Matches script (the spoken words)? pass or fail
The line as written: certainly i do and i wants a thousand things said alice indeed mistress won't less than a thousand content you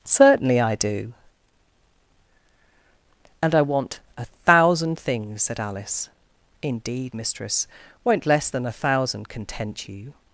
fail